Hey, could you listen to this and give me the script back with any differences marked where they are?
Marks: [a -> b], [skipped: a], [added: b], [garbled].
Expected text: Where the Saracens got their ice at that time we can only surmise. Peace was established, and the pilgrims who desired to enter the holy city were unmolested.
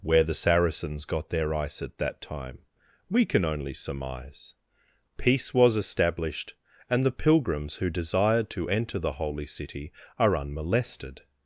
Where the Saracens got their ice at that time we can only surmise. Peace was established, and the pilgrims who desired to enter the holy city [were -> are] unmolested.